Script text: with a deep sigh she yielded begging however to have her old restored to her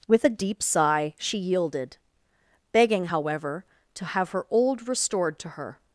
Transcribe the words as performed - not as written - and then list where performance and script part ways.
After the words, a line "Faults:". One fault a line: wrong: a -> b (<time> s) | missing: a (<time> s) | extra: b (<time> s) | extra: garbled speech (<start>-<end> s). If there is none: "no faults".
with a deep sigh she yielded begging however to have her old restored to her
Faults:
no faults